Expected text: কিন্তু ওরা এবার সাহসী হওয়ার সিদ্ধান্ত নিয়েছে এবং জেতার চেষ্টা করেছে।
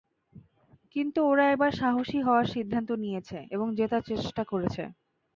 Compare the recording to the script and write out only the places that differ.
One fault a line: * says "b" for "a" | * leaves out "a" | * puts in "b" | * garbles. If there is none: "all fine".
all fine